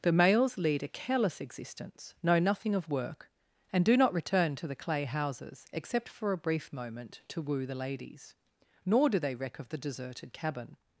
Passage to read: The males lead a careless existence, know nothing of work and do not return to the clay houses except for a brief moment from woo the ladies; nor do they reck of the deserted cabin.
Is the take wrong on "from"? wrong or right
wrong